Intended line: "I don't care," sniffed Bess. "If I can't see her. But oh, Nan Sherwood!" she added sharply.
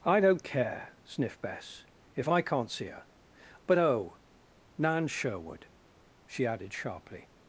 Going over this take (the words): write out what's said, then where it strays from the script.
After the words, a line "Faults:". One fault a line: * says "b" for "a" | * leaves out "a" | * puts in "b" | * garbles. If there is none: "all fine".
"I don't care," sniffed Bess. "If I can't see her. But oh, Nan Sherwood!" she added sharply.
Faults:
all fine